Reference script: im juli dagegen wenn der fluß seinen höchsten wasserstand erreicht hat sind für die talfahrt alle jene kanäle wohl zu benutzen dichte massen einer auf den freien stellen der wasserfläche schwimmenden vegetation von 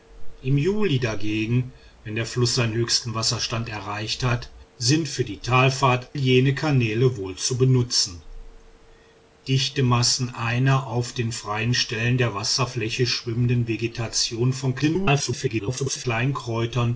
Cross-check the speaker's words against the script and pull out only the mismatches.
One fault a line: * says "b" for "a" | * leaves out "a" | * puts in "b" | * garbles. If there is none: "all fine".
* leaves out "alle"
* garbles